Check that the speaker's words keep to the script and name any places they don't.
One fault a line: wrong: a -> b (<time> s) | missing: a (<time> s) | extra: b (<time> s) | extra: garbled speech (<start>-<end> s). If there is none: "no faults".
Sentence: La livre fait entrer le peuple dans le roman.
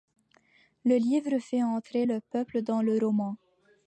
wrong: La -> Le (0.8 s)